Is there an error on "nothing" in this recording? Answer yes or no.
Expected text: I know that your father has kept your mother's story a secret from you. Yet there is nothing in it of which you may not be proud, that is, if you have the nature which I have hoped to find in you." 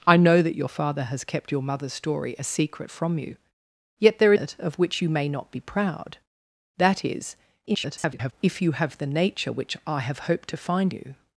yes